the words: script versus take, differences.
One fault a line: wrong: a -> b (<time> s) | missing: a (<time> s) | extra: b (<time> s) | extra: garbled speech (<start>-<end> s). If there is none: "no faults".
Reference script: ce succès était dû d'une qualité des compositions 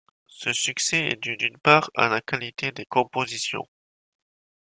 wrong: était -> est (1.1 s)
extra: part à la (1.6 s)